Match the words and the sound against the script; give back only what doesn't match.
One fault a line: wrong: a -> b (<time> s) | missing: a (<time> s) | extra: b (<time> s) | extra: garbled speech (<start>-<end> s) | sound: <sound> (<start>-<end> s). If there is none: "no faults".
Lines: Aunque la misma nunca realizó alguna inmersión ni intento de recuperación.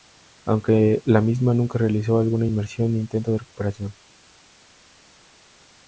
no faults